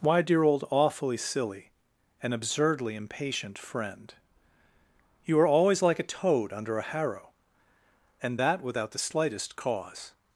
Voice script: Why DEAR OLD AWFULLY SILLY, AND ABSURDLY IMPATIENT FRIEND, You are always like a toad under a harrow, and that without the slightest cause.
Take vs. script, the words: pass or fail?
pass